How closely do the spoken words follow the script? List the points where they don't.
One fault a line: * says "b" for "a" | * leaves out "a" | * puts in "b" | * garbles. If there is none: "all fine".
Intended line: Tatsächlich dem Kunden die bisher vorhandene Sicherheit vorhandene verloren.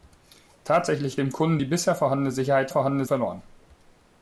all fine